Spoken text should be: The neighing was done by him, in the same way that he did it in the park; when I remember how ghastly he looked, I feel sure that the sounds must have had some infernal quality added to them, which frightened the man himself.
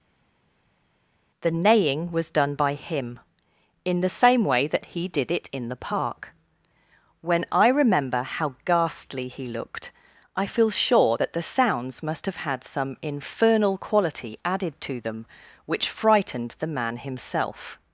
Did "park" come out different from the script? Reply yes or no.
no